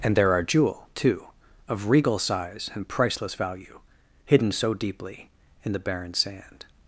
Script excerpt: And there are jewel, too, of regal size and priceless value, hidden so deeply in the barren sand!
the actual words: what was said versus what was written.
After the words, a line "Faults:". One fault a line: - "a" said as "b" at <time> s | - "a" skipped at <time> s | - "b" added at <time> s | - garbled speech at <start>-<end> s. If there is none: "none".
And there are jewel, too, of regal size and priceless value, hidden so deeply in the barren sand!
Faults:
none